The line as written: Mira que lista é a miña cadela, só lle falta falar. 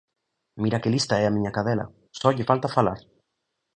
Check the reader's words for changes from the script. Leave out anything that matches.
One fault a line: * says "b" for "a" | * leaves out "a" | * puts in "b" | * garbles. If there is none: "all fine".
all fine